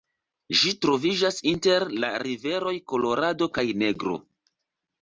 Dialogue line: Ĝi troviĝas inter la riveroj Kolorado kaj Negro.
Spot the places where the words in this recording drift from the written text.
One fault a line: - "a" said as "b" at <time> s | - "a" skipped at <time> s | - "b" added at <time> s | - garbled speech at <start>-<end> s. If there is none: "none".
none